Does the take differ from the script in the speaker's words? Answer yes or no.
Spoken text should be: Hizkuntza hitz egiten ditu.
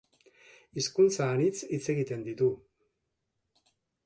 yes